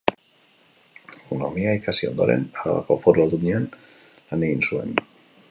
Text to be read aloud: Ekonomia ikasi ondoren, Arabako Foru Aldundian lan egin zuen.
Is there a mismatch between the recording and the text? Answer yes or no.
no